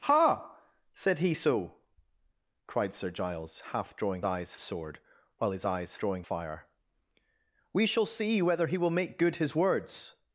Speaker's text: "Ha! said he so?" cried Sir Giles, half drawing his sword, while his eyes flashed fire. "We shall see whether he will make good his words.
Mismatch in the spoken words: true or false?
true